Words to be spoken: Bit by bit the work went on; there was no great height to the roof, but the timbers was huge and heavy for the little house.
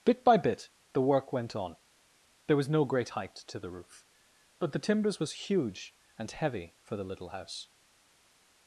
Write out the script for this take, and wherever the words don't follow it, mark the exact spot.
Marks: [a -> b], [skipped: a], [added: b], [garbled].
Bit by bit the work went on; there was no great height to the roof, but the timbers was huge and heavy for the little house.